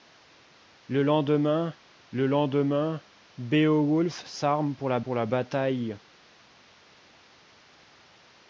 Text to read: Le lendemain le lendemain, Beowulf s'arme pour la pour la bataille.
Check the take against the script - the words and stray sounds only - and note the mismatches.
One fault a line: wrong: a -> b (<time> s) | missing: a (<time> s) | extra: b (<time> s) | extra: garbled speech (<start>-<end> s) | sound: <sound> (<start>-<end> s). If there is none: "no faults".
no faults